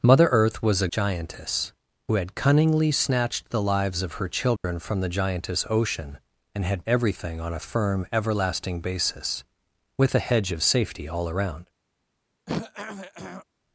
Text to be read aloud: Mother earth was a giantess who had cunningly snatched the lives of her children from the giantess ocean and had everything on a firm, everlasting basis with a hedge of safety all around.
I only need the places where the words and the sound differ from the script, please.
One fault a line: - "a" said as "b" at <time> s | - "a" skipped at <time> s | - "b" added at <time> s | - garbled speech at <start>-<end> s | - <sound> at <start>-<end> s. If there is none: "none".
- dropout at 4.6-4.6 s
- throat clearing at 12.5-13.5 s